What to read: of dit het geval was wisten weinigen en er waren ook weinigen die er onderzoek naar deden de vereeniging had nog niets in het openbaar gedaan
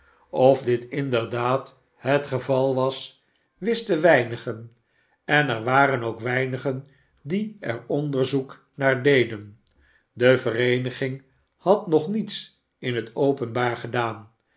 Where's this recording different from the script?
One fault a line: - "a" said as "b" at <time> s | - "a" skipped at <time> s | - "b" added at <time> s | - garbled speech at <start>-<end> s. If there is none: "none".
- "inderdaad" added at 0.8 s